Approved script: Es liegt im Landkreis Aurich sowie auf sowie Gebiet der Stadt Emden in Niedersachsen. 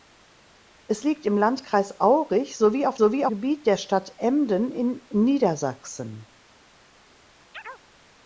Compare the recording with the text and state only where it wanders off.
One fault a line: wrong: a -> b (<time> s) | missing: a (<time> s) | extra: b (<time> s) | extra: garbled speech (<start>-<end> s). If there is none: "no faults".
no faults